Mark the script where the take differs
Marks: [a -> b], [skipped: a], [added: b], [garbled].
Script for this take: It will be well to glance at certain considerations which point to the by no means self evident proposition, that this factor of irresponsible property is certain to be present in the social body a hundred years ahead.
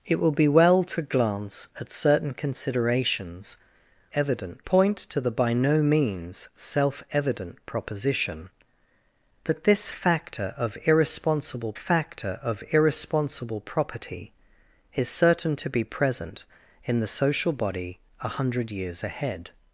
It will be well to glance at certain considerations [which -> evident] point to the by no means self evident proposition, that this factor of irresponsible [added: factor of irresponsible] property is certain to be present in the social body a hundred years ahead.